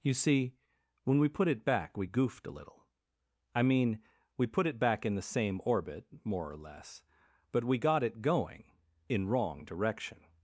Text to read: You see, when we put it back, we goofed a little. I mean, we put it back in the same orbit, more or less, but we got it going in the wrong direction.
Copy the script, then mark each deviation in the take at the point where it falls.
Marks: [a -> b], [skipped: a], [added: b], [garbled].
You see, when we put it back, we goofed a little. I mean, we put it back in the same orbit, more or less, but we got it going in [skipped: the] wrong direction.